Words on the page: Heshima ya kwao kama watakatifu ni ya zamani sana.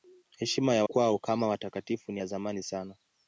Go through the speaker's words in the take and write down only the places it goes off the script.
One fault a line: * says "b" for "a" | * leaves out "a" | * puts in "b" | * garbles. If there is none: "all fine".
all fine